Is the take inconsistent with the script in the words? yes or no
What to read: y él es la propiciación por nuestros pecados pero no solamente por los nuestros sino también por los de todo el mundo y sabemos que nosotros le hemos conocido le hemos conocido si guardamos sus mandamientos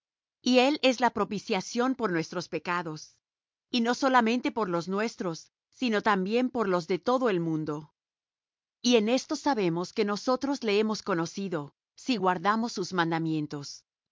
yes